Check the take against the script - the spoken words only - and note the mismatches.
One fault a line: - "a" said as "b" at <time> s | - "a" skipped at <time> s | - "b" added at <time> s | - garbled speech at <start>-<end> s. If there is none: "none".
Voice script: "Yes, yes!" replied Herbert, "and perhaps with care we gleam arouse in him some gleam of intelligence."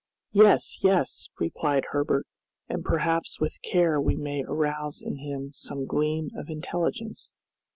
- "gleam" said as "may" at 4.2 s